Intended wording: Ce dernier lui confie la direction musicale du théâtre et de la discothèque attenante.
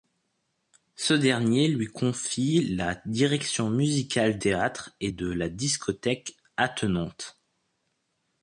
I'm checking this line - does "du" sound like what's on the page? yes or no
no